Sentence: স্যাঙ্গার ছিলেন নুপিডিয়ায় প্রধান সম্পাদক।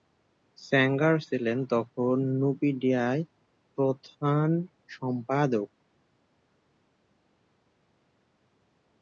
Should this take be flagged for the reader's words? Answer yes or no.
yes